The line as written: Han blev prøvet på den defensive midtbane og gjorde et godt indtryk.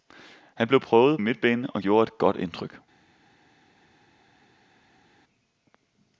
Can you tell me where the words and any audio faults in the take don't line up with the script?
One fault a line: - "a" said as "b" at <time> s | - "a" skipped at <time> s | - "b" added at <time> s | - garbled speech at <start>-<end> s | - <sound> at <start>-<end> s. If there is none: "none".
- "på den defensive" skipped at 1.2 s